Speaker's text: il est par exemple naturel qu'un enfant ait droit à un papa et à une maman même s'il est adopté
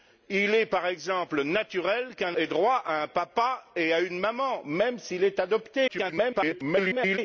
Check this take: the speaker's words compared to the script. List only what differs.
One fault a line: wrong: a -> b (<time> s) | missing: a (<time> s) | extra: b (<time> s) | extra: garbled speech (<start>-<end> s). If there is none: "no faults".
missing: enfant (2.4 s)
extra: garbled speech (5.9-7.2 s)